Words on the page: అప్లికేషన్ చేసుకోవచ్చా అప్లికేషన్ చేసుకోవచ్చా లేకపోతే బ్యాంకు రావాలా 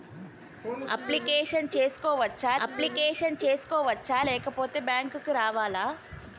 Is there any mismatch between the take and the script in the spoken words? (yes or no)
no